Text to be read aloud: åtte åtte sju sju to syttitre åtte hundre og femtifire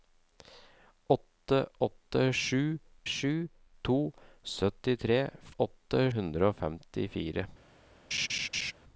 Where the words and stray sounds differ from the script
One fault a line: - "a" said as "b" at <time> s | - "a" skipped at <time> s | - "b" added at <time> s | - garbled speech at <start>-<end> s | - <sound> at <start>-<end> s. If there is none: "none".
- laugh at 8.1-8.7 s